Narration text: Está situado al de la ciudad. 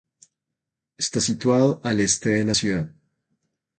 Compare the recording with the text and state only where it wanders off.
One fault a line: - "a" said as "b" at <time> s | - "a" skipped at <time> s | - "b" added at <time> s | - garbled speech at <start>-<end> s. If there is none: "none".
- "este" added at 2.0 s